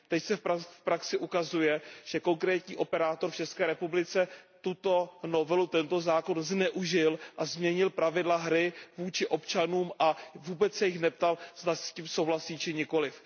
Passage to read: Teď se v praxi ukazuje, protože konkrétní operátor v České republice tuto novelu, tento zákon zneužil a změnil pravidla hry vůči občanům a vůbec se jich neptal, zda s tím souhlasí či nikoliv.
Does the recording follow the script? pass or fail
fail